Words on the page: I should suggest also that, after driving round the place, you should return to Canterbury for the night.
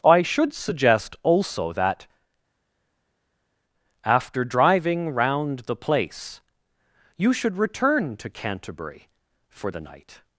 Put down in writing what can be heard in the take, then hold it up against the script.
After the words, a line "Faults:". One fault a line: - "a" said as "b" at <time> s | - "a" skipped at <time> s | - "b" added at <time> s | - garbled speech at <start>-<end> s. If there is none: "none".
I should suggest also that, after driving round the place, you should return to Canterbury for the night.
Faults:
none